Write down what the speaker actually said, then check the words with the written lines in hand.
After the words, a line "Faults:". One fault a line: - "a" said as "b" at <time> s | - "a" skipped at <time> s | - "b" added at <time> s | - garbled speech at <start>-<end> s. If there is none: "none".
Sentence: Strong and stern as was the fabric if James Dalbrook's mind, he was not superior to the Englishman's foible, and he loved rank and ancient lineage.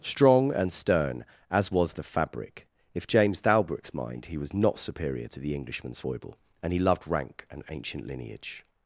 Strong and stern as was the fabric if James Dalbrook's mind, he was not superior to the Englishman's foible, and he loved rank and ancient lineage.
Faults:
none